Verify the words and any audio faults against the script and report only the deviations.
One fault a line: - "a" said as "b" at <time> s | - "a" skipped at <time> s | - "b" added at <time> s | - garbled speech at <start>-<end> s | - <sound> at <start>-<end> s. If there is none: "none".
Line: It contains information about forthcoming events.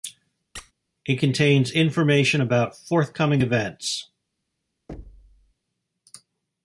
- squeak at 0.5-0.7 s
- thud at 4.9-5.5 s